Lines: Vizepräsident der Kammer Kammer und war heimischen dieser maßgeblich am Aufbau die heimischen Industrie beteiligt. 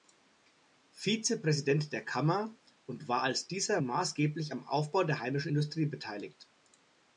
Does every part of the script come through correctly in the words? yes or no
no